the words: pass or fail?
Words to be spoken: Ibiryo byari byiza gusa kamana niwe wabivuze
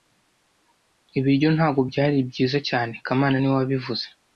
fail